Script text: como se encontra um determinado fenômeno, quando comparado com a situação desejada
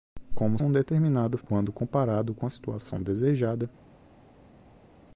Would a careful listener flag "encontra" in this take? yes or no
yes